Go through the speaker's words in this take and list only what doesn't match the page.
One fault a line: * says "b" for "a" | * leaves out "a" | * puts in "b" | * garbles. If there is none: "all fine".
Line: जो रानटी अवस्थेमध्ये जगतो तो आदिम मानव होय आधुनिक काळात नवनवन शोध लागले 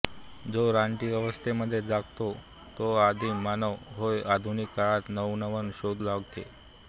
all fine